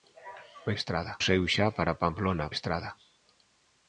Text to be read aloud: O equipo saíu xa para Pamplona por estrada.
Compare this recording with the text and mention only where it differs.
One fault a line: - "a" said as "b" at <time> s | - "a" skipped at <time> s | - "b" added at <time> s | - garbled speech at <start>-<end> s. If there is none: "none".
- "equipo" said as "estrada" at 0.8 s
- "por" skipped at 2.5 s